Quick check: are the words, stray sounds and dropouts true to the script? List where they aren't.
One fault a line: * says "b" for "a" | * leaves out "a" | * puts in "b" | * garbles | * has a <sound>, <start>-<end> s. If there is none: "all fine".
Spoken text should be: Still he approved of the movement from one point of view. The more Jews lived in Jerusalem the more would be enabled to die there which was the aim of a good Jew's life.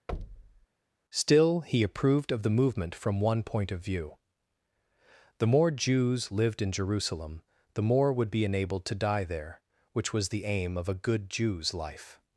* has a thud, 0.1-0.7 s